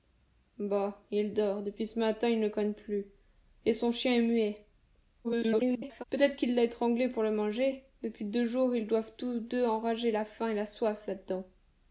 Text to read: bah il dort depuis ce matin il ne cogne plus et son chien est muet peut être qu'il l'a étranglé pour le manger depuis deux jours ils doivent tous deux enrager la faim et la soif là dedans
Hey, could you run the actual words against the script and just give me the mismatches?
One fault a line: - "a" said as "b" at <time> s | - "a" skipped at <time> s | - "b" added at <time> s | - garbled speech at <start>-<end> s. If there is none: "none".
- garbled speech at 5.2-6.0 s